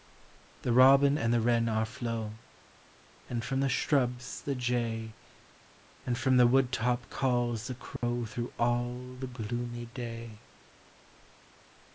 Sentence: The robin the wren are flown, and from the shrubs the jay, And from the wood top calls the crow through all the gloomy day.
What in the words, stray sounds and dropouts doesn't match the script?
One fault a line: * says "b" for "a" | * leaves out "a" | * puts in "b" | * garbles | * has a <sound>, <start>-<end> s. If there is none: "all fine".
* puts in "and"
* has a dropout, 8.0-8.0 s